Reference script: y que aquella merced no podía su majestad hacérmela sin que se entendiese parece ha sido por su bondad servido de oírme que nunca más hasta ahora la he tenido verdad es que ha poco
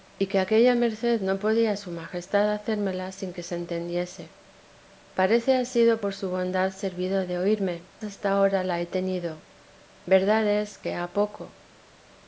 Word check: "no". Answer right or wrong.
right